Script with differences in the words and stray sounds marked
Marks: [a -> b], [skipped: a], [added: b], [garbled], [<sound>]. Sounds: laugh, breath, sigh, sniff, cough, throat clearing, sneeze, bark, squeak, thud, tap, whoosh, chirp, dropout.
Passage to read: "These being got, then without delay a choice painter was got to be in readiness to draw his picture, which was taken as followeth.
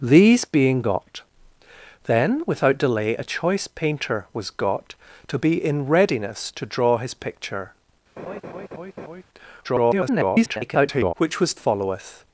"These being got, then without delay a choice painter was got to be in readiness to draw his picture, [laugh] [garbled] which was [skipped: taken as] followeth.